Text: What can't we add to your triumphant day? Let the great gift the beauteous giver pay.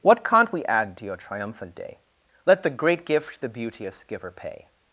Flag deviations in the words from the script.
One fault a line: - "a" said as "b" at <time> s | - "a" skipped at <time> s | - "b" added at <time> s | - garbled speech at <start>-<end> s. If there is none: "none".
none